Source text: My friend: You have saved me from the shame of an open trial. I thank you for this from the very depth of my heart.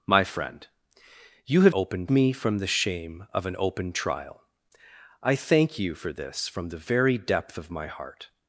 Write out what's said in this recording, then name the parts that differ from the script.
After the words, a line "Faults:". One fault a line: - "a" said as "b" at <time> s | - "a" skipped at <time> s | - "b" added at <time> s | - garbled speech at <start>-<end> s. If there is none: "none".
My friend: You have open me from the shame of an open trial. I thank you for this from the very depth of my heart.
Faults:
- "saved" said as "open" at 1.7 s